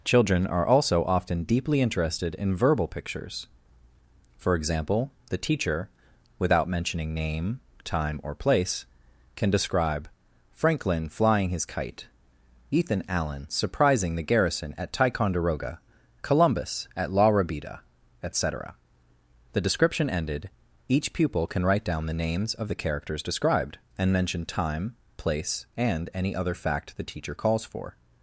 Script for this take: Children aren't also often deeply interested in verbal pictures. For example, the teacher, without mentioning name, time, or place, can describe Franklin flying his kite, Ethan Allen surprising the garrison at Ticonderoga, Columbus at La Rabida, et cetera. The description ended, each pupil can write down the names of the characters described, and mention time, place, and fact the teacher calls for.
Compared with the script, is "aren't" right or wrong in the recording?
wrong